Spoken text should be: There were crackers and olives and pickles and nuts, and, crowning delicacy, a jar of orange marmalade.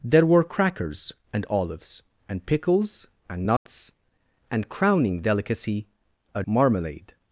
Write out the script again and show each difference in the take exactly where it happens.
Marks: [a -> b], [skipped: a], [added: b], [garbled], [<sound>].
There were crackers and olives and pickles and nuts, [dropout] and, crowning delicacy, a [skipped: jar of orange] marmalade.